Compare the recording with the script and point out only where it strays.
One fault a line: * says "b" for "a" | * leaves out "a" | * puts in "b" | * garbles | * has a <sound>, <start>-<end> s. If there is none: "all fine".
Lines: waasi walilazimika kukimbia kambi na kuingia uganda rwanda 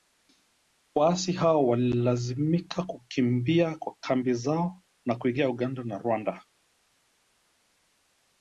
* puts in "hao"
* puts in "zao"
* puts in "na"